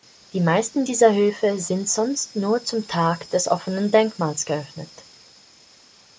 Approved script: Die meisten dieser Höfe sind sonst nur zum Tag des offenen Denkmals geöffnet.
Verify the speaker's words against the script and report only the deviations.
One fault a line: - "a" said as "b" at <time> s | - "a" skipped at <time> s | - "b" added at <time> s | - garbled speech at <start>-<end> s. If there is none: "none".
none